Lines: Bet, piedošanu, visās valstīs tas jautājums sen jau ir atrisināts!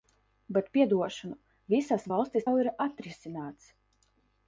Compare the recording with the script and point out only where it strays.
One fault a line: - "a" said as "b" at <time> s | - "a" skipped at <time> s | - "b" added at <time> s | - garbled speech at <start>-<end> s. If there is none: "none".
- "tas jautājums sen" skipped at 2.5 s